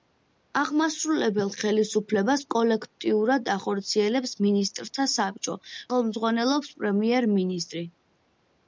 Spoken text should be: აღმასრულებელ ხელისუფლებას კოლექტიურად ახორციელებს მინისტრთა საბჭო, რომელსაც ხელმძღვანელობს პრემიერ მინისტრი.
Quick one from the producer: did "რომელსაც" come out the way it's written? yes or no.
no